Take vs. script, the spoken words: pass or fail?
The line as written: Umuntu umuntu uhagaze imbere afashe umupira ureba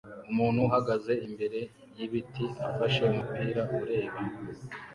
fail